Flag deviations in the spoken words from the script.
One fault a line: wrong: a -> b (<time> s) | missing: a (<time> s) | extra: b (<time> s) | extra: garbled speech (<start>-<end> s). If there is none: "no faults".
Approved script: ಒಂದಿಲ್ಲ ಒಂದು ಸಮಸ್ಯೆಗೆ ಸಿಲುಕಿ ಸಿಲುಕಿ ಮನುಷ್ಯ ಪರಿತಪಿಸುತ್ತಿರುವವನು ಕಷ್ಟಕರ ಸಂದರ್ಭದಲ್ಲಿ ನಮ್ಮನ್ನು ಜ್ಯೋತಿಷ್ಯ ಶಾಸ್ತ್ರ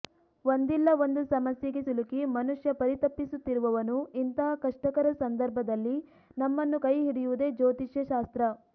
missing: ಸಿಲುಕಿ (2.2 s)
extra: ಇಂತಹ (4.2 s)
extra: ಕೈ ಹಿಡಿಯುವುದೇ (6.8 s)